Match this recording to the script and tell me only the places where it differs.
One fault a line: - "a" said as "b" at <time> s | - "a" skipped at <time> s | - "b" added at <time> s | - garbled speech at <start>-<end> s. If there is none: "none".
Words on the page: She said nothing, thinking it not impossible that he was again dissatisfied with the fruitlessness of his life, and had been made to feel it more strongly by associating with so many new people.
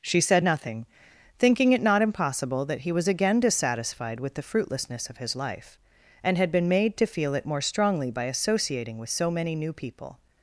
none